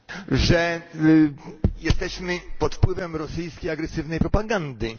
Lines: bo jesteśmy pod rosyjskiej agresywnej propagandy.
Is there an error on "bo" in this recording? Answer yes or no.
yes